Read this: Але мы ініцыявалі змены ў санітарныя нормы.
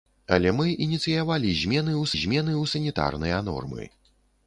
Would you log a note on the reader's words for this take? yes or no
yes